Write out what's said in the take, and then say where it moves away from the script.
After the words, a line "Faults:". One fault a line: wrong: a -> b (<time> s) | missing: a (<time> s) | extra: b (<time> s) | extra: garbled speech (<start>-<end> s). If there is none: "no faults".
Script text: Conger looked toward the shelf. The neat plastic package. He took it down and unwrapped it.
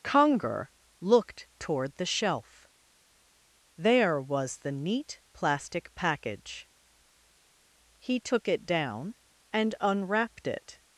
Conger looked toward the shelf. There was the neat plastic package. He took it down and unwrapped it.
Faults:
extra: There was (3.8 s)